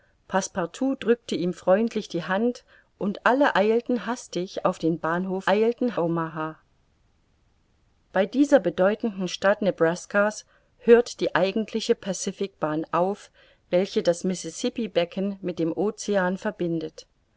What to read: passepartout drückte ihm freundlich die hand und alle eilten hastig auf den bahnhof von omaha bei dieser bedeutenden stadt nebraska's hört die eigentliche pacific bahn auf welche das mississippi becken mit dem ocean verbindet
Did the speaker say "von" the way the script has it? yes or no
no